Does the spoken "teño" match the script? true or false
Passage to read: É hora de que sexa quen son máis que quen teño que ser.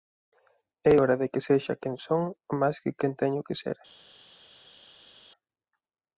true